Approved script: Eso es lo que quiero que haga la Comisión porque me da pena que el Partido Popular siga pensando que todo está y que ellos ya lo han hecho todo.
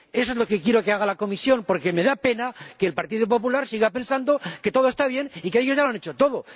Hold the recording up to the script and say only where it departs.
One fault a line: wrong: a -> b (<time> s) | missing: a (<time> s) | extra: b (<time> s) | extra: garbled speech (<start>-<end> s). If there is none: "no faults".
extra: bien (5.1 s)